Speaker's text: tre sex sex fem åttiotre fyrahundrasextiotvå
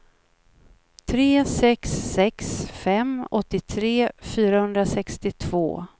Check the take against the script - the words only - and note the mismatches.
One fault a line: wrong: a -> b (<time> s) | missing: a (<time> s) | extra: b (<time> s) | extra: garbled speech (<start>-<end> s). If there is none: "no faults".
no faults